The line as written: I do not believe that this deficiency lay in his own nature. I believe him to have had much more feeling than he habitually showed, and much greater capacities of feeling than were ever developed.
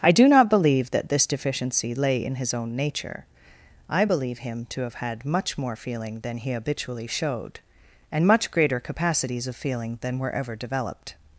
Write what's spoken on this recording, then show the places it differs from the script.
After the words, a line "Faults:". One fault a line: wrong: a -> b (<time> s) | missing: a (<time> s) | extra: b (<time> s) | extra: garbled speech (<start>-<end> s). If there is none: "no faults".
I do not believe that this deficiency lay in his own nature. I believe him to have had much more feeling than he habitually showed, and much greater capacities of feeling than were ever developed.
Faults:
no faults